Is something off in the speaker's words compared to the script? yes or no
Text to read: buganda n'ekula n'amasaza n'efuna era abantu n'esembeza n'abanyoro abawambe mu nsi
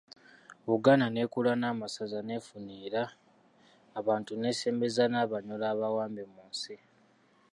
no